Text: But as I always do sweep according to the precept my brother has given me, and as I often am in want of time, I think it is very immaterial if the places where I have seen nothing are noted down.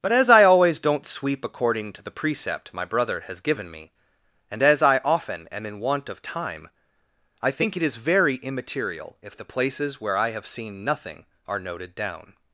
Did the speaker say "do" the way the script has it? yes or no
no